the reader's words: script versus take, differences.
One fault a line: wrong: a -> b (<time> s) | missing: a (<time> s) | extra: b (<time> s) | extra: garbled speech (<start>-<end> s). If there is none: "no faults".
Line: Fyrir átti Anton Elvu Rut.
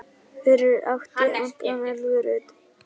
no faults